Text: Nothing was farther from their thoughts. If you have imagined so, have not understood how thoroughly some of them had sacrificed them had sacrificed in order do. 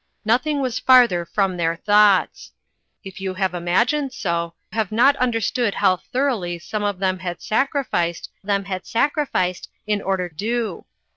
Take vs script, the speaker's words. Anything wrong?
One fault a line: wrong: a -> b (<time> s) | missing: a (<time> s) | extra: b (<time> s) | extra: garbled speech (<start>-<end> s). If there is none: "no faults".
no faults